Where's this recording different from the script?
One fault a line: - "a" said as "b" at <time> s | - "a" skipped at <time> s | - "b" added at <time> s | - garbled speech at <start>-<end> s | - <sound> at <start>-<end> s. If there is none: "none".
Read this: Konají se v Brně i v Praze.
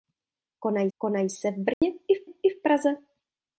- "konají" added at 1.0 s
- dropout at 1.7-1.8 s
- "i v" added at 2.2 s